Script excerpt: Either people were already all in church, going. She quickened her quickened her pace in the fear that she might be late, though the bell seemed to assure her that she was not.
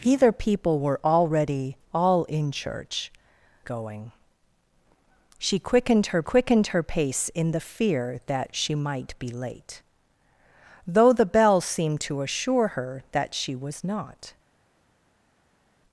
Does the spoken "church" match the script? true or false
true